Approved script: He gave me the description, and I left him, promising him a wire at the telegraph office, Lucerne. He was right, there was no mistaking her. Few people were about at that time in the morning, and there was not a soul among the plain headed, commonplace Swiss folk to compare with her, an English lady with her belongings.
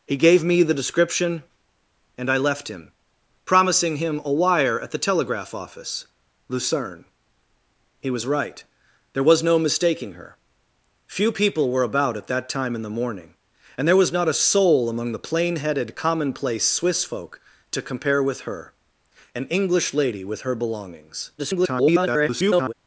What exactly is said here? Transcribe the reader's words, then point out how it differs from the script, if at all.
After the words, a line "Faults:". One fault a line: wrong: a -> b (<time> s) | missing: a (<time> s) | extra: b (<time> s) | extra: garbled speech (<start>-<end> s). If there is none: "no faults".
He gave me the description, and I left him, promising him a wire at the telegraph office, Lucerne. He was right, there was no mistaking her. Few people were about at that time in the morning, and there was not a soul among the plain headed, commonplace Swiss folk to compare with her, an English lady with her belongings. [garbled]
Faults:
extra: garbled speech (21.4-22.7 s)